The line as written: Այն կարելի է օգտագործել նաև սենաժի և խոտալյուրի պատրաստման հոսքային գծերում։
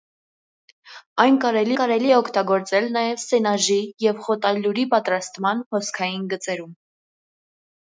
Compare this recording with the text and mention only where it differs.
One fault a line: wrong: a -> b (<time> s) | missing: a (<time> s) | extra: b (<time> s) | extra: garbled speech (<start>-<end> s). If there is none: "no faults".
extra: կարելի (1.8 s)